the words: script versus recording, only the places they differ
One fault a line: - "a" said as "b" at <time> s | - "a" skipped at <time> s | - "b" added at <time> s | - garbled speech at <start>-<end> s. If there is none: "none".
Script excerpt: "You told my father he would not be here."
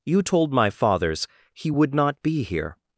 - "father" said as "fathers" at 0.7 s